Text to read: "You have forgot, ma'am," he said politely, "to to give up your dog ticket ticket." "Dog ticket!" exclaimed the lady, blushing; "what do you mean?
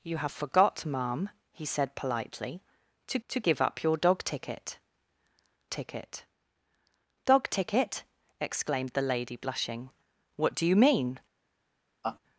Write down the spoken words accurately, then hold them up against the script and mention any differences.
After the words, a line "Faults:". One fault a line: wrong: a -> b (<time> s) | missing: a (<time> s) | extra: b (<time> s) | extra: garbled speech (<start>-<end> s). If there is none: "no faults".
"You have forgot, ma'am," he said politely, "to to give up your dog ticket ticket." "Dog ticket!" exclaimed the lady, blushing; "what do you mean?
Faults:
no faults